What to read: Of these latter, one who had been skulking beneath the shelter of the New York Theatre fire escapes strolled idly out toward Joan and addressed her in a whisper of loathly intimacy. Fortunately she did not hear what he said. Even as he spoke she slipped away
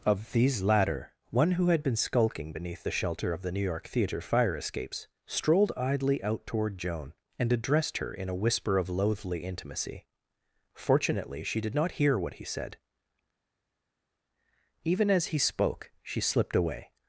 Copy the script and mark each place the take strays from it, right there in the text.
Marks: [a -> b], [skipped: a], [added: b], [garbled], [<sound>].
Of these latter, one who had been skulking beneath the shelter of the New York Theatre fire escapes strolled idly out toward Joan and addressed her in a whisper of loathly intimacy. Fortunately she did not hear what he said. Even as he spoke she slipped away